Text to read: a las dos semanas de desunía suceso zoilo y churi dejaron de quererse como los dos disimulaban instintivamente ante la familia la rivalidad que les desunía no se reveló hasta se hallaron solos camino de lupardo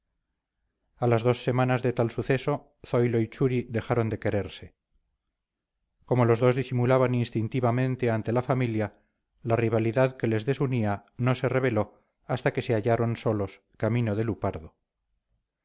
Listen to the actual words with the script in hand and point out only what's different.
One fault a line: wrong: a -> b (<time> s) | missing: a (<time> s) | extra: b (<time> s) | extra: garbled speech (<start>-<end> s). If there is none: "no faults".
wrong: desunía -> tal (1.9 s)
extra: que (12.5 s)